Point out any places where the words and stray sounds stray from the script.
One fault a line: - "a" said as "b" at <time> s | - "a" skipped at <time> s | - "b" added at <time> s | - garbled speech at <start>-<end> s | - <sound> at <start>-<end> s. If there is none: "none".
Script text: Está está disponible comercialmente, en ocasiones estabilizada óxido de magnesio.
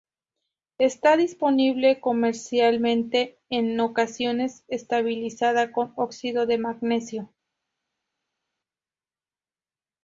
- "está" skipped at 1.1 s
- "con" added at 5.7 s